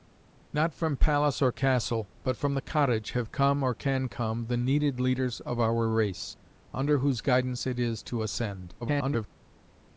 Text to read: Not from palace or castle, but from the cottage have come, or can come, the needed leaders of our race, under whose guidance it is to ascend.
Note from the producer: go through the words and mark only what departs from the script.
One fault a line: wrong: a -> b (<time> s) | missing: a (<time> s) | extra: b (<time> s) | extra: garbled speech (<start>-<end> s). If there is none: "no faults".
extra: garbled speech (8.8-9.3 s)